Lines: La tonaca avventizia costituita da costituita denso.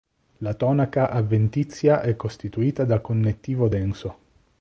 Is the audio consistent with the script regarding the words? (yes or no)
no